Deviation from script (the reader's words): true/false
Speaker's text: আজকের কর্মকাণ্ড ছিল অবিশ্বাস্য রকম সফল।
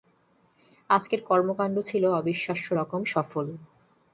false